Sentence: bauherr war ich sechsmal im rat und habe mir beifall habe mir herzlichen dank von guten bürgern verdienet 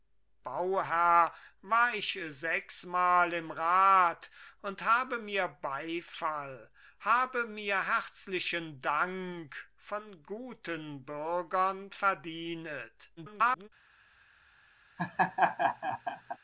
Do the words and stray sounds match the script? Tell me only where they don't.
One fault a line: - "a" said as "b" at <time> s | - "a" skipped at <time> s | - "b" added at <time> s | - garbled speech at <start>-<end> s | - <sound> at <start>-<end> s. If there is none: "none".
- garbled speech at 13.2-13.7 s
- laugh at 15.0-16.4 s